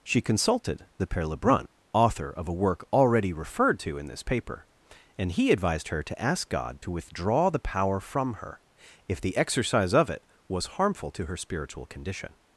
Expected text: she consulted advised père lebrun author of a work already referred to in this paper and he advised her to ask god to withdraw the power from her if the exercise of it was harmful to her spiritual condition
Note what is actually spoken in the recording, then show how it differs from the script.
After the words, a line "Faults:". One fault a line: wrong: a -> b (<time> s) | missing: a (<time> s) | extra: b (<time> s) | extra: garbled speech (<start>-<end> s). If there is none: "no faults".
she consulted the père lebrun author of a work already referred to in this paper and he advised her to ask god to withdraw the power from her if the exercise of it was harmful to her spiritual condition
Faults:
wrong: advised -> the (1.0 s)